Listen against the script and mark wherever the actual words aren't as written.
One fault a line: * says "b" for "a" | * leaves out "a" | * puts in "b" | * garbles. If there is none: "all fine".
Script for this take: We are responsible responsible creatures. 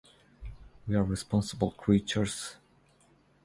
* leaves out "responsible"